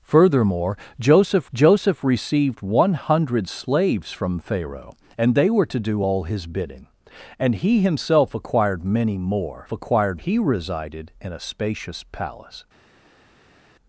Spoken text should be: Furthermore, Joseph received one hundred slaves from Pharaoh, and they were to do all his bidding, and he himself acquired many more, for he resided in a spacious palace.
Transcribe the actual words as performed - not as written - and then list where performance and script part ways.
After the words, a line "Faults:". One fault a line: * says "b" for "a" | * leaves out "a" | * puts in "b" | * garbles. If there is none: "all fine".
Furthermore, Joseph Joseph received one hundred slaves from Pharaoh, and they were to do all his bidding, and he himself acquired many more, acquired he resided in a spacious palace.
Faults:
* puts in "Joseph"
* says "acquired" for "for"